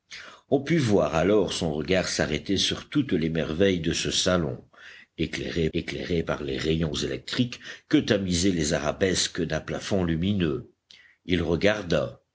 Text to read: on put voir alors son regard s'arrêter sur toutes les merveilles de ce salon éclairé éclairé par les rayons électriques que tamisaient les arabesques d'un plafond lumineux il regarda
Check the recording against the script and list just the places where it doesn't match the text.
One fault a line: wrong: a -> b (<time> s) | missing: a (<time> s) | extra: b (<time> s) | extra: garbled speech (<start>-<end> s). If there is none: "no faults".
no faults